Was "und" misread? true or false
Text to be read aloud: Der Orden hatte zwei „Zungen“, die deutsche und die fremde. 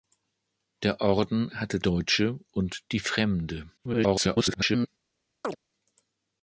false